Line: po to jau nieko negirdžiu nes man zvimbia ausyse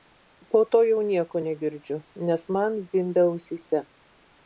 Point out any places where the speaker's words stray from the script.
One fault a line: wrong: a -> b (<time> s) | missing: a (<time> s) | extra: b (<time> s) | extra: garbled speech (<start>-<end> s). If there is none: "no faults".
no faults